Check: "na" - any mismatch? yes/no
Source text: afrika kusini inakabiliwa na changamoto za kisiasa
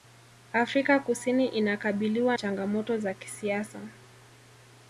yes